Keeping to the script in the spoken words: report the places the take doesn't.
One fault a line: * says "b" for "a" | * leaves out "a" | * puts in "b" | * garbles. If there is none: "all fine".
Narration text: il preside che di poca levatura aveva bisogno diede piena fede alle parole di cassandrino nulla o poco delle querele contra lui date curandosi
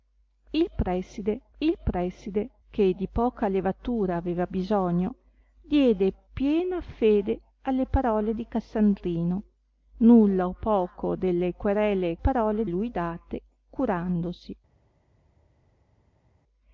* puts in "il preside"
* says "parole" for "contra"